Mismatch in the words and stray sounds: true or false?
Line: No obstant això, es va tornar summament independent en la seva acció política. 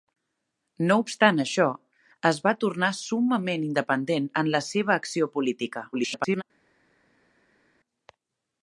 true